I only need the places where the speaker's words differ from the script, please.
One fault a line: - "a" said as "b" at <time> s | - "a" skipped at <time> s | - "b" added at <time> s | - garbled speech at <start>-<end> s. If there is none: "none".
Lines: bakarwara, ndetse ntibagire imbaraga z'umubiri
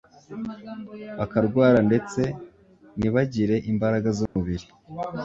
none